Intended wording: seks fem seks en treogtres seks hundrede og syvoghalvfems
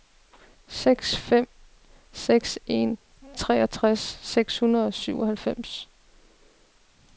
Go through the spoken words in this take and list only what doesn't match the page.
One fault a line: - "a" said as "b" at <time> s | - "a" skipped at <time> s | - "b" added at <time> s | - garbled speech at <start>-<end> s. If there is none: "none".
none